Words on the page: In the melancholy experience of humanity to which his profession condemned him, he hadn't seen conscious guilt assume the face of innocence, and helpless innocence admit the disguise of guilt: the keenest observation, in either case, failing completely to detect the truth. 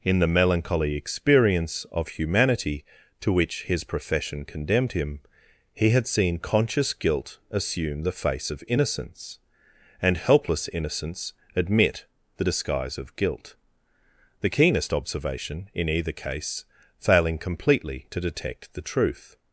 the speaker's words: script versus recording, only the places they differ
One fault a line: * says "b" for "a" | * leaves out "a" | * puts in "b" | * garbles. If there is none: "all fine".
* says "had" for "hadn't"